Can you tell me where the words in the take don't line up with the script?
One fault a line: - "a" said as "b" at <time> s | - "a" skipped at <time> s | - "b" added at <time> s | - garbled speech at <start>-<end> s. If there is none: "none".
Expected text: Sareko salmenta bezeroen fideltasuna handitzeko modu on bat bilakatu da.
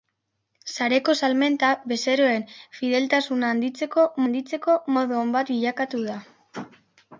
- "handitzeko" added at 4.3 s